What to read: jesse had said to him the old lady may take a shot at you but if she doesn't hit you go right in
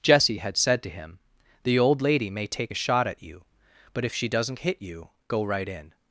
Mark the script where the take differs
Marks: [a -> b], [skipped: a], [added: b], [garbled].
jesse had said to him the old lady may take a shot at you but if she doesn't hit you go right in